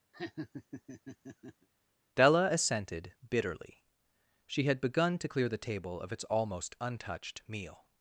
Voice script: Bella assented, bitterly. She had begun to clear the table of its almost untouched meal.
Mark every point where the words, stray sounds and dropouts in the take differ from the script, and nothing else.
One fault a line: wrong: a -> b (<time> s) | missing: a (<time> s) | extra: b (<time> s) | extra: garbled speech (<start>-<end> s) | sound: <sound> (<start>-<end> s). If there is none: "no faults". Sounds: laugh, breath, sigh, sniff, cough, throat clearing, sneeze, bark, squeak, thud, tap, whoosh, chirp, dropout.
sound: laugh (0.1-1.7 s)
wrong: Bella -> Della (2.1 s)